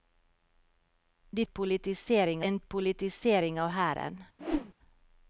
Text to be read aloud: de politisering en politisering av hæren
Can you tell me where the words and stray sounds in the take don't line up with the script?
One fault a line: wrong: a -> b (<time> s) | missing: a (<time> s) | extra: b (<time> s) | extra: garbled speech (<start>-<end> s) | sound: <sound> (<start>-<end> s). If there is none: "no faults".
sound: whoosh (4.4-4.7 s)